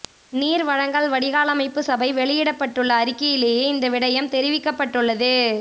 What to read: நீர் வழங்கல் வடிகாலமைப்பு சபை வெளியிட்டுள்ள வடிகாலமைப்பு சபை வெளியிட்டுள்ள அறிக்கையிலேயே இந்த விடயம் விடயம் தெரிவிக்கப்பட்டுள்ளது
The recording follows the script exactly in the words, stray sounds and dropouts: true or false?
false